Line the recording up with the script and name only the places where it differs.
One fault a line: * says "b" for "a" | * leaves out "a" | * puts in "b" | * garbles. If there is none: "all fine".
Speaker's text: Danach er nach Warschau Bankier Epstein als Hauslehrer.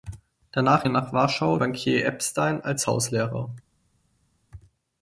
all fine